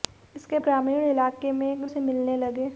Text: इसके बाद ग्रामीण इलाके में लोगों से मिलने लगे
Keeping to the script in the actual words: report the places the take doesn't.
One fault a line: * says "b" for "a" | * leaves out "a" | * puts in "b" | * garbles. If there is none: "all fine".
* leaves out "बाद"
* leaves out "लोगों"